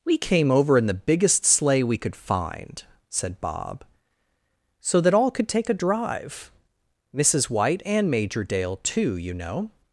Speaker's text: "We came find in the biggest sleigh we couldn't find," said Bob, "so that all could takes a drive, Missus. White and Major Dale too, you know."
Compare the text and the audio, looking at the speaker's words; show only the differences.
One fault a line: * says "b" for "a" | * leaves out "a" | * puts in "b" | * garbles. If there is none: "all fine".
* says "over" for "find"
* says "could" for "couldn't"
* says "take" for "takes"